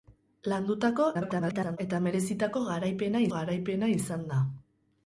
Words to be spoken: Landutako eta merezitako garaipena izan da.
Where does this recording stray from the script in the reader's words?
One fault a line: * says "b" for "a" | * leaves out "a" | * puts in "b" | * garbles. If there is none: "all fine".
* garbles
* puts in "garaipena"